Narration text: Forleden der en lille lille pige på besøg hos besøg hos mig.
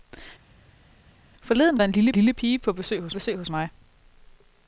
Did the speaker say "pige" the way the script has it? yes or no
yes